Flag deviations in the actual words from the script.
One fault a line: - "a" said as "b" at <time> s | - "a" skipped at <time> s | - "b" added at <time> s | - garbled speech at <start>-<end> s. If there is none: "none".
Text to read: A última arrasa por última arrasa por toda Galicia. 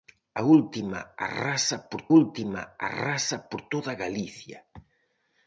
none